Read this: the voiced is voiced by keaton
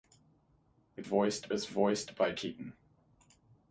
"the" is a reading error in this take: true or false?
false